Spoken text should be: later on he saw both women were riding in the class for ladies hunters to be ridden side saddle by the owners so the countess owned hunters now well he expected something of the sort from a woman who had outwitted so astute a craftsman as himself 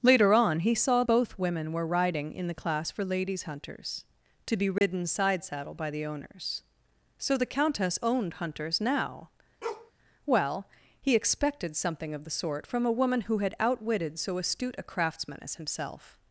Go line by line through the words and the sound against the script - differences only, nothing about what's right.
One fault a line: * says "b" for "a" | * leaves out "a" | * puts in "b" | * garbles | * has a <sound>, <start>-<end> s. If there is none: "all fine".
* has a dropout, 4.8-4.8 s
* has a bark, 9.6-9.9 s